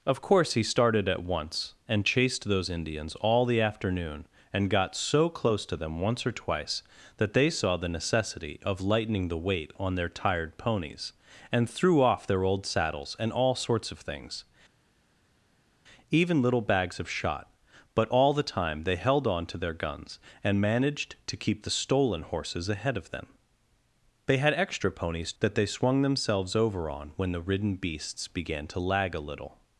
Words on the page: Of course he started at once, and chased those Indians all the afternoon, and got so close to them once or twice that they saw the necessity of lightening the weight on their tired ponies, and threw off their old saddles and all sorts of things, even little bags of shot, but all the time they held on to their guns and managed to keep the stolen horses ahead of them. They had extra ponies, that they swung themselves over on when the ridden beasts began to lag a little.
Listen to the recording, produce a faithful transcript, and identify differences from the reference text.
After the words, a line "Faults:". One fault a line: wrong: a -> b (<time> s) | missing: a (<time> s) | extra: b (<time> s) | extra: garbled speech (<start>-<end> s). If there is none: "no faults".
Of course he started at once, and chased those Indians all the afternoon, and got so close to them once or twice that they saw the necessity of lightening the weight on their tired ponies, and threw off their old saddles and all sorts of things, even little bags of shot, but all the time they held on to their guns and managed to keep the stolen horses ahead of them. They had extra ponies, that they swung themselves over on when the ridden beasts began to lag a little.
Faults:
no faults